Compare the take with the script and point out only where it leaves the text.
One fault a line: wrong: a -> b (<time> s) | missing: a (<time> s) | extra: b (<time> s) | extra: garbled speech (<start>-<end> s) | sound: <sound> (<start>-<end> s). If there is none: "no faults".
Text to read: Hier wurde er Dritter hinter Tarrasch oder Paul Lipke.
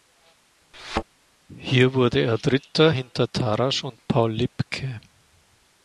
sound: thud (0.7-1.0 s)
wrong: oder -> und (3.8 s)